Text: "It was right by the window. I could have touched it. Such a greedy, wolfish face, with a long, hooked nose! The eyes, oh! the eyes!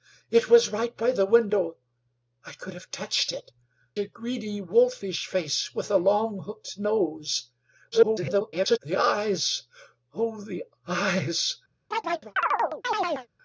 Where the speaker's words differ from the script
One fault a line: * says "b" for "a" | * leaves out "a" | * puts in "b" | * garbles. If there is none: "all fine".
* leaves out "Such"
* garbles